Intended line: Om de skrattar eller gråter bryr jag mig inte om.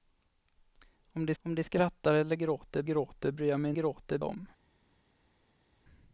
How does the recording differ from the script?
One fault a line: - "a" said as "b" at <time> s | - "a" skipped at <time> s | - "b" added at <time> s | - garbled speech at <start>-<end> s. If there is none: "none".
- "om de" added at 1.4 s
- "gråter" added at 2.8 s
- "inte" said as "gråter" at 3.7 s